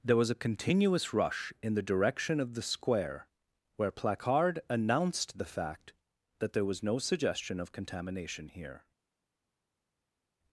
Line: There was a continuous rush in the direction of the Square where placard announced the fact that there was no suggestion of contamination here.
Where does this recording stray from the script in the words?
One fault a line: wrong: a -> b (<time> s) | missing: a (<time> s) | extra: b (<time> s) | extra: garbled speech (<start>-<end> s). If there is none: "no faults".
no faults